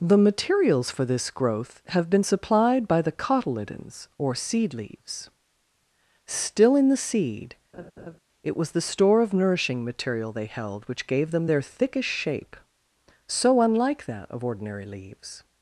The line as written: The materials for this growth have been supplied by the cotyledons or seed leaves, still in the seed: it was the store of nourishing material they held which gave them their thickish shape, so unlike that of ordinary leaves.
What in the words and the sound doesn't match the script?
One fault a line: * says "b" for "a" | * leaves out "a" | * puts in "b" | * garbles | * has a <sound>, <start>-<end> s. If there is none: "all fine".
* has a laugh, 7.7-8.2 s